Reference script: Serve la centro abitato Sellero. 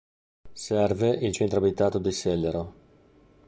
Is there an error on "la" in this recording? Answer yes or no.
yes